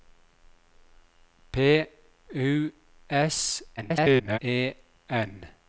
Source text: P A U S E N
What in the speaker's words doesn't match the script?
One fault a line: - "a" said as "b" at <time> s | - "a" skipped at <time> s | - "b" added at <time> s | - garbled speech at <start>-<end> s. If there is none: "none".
- "A" skipped at 1.9 s
- garbled speech at 3.8-4.4 s